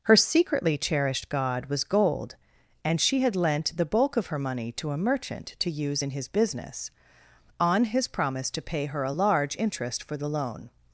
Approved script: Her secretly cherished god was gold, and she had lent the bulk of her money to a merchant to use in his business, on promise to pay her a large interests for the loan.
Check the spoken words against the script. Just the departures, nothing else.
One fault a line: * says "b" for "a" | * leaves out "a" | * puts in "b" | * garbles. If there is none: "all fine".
* puts in "his"
* says "interest" for "interests"